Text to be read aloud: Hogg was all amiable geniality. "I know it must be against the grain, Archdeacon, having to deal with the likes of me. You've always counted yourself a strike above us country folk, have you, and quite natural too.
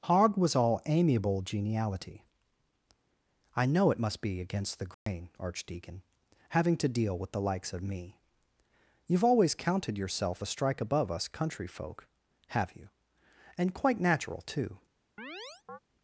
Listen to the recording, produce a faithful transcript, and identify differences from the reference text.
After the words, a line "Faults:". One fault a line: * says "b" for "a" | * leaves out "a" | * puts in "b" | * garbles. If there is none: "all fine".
Hogg was all amiable geniality. "I know it must be against the grain, Archdeacon, having to deal with the likes of me. You've always counted yourself a strike above us country folk, have you, and quite natural too.
Faults:
all fine